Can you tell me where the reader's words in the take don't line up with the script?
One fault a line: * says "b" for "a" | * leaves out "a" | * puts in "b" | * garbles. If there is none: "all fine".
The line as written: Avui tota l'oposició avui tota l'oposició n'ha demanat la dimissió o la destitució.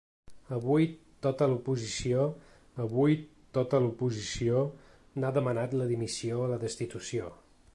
all fine